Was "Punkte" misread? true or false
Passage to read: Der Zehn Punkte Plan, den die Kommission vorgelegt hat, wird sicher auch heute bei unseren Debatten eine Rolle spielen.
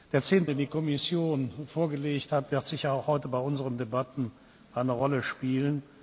true